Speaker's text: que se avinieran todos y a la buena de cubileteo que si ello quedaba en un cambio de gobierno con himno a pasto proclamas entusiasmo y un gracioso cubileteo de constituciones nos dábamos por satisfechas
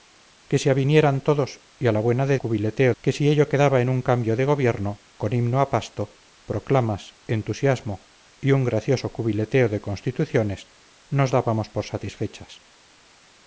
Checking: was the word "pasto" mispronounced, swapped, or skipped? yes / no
no